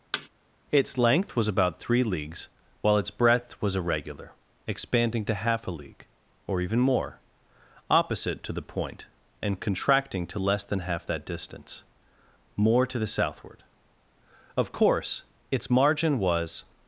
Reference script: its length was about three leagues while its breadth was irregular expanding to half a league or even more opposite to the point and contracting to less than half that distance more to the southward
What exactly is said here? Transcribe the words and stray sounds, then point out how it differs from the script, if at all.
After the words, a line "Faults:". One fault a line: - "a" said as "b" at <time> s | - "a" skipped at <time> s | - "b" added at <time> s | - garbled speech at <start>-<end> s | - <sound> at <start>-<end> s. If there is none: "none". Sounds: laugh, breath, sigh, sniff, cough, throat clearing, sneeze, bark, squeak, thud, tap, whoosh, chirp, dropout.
its length was about three leagues while its breadth was irregular expanding to half a league or even more opposite to the point and contracting to less than half that distance more to the southward of course its margin was
Faults:
- thud at 0.1-0.3 s
- "of course its margin was" added at 14.6 s